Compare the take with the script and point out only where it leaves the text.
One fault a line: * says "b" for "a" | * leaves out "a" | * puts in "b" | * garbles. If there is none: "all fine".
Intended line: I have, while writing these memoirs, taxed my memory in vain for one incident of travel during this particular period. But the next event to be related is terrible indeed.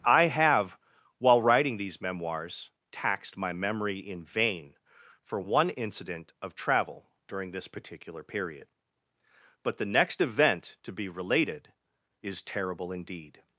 all fine